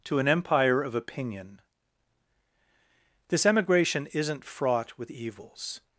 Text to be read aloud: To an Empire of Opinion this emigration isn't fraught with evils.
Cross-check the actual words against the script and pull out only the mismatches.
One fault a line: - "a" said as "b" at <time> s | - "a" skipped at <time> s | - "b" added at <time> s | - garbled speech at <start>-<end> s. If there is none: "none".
none